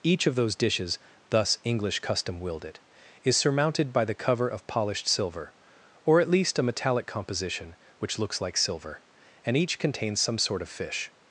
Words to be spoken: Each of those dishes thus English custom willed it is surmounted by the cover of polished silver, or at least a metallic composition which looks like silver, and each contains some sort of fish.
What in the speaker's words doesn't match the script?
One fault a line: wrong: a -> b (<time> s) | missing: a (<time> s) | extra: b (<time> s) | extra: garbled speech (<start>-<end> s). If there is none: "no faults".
no faults